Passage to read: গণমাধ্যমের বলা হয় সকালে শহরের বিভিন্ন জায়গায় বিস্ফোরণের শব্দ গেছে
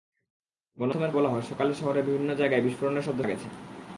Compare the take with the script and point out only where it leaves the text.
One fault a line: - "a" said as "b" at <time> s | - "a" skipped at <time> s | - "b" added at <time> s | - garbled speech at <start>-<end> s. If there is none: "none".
none